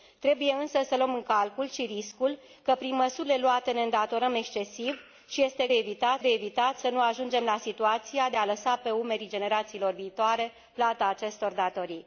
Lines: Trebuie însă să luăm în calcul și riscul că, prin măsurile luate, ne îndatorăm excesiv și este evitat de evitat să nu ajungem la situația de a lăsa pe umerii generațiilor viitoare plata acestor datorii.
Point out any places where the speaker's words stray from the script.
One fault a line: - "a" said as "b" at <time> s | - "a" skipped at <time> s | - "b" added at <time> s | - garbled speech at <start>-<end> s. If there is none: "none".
none